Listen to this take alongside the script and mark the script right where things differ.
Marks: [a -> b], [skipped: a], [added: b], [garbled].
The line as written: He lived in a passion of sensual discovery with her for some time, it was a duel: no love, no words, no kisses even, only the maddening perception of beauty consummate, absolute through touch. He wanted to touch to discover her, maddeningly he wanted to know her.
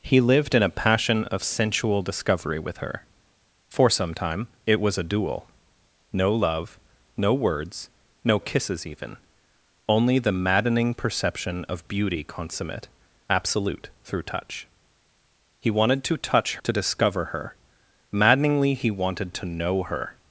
He lived in a passion of sensual discovery with her for some time, it was a duel: no love, no words, no kisses even, only the maddening perception of beauty consummate, absolute through touch. He wanted to touch to discover her, maddeningly he wanted to know her.